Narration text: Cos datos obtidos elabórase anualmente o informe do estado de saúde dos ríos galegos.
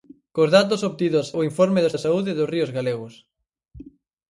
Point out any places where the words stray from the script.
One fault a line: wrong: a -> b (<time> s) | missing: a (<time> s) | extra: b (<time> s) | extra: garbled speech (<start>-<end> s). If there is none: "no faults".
missing: elabórase anualmente (1.3 s)
missing: estado (1.9 s)